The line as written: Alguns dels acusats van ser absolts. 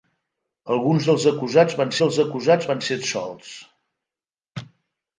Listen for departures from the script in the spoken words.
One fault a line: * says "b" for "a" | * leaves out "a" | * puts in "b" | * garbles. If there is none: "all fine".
* puts in "dels acusats van"